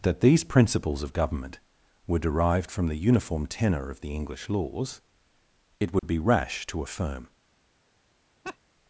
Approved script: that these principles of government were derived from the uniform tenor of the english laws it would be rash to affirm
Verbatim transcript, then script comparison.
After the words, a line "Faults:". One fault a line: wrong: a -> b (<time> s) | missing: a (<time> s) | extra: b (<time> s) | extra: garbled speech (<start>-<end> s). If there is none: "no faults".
that these principles of government were derived from the uniform tenor of the english laws it would be rash to affirm
Faults:
no faults